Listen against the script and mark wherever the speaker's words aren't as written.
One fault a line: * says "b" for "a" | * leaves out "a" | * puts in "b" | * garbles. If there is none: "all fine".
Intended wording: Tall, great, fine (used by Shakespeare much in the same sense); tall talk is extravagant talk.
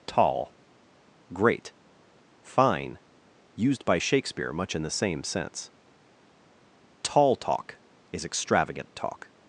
all fine